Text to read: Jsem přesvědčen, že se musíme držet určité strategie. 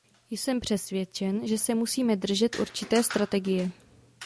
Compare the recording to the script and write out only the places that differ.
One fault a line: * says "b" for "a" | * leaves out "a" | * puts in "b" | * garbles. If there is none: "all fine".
all fine